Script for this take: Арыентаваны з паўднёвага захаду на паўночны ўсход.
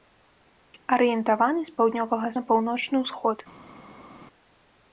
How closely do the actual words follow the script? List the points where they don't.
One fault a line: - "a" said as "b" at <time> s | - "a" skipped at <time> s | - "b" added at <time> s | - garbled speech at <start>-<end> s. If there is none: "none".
- "захаду" skipped at 2.3 s